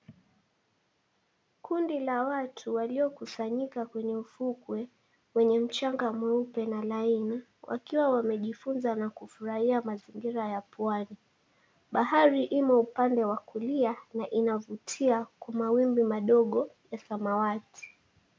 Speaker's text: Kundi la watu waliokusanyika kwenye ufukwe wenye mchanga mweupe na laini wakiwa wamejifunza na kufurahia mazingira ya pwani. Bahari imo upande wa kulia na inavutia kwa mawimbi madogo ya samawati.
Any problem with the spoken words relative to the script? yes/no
no